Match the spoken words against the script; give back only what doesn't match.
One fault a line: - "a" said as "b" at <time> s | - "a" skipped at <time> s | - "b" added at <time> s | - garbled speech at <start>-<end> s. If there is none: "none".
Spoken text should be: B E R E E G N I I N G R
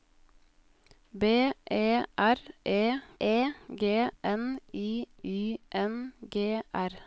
none